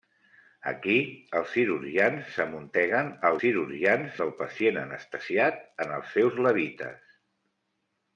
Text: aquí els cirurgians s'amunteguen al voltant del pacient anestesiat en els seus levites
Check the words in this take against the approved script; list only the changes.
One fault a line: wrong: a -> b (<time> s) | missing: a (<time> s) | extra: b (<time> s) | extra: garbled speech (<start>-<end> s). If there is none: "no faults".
wrong: voltant -> cirurgians (3.4 s)